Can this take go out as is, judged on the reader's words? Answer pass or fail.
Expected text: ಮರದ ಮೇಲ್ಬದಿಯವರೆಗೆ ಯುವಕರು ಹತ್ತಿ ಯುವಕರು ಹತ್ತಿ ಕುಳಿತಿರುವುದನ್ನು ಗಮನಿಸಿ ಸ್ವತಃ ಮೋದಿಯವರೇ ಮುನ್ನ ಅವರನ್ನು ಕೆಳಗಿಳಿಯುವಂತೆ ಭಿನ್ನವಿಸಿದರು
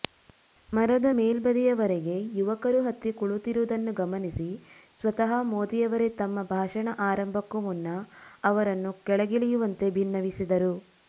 fail